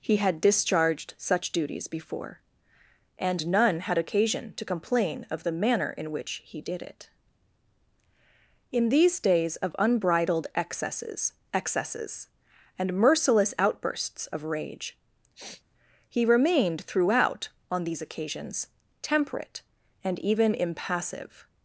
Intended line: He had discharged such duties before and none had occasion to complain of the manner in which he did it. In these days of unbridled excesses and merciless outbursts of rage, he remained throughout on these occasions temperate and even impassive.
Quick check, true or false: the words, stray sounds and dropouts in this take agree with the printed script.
false